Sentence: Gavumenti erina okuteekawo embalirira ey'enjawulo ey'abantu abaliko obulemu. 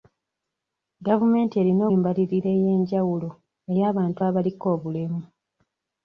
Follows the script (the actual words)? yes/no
no